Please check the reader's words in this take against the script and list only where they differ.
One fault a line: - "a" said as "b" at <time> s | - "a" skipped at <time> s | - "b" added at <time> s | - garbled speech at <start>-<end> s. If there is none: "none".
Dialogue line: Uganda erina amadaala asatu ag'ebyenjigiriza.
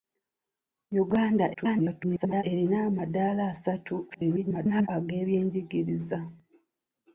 - garbled speech at 1.5-2.4 s
- garbled speech at 4.1-4.9 s